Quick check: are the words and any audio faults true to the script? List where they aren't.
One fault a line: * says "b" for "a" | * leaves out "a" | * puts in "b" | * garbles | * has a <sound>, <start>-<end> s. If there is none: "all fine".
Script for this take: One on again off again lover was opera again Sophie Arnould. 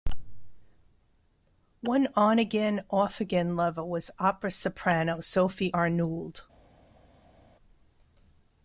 * says "soprano" for "again"